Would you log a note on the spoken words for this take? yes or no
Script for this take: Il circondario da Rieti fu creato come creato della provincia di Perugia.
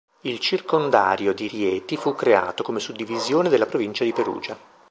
yes